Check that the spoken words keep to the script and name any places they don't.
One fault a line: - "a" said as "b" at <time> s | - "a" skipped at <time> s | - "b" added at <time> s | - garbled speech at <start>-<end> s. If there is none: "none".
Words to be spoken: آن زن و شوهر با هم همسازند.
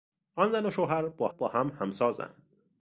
- "با" added at 1.3 s